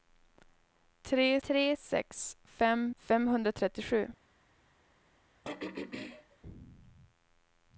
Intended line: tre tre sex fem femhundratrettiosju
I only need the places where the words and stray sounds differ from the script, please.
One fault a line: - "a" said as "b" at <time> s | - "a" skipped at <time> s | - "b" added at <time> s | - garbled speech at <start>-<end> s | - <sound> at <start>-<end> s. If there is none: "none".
- throat clearing at 5.4-6.4 s